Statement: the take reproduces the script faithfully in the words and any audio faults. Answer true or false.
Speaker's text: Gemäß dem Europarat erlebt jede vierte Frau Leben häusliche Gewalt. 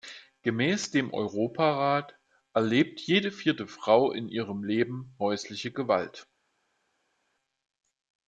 false